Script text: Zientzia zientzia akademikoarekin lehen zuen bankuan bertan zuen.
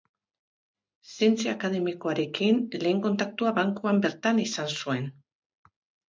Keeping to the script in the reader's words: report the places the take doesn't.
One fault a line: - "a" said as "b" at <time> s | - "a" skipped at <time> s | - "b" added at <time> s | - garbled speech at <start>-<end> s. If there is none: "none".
- "zientzia" skipped at 1.5 s
- "zuen" said as "kontaktua" at 3.0 s
- "izan" added at 4.5 s